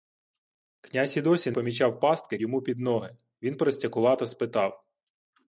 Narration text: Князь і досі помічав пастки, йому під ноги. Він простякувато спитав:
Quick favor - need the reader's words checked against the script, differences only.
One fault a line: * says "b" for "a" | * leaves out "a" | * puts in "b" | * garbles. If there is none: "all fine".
all fine